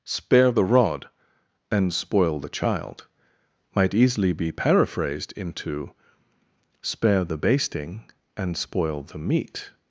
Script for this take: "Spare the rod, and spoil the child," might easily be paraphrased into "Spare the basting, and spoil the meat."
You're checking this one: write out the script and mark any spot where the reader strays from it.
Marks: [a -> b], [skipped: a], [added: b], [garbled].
"Spare the rod, and spoil the child," might easily be paraphrased into "Spare the basting, and spoil the meat."